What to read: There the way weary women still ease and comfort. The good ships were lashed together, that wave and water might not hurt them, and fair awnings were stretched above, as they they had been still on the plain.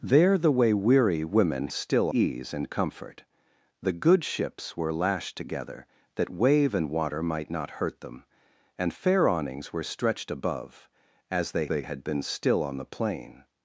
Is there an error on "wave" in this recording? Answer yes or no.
no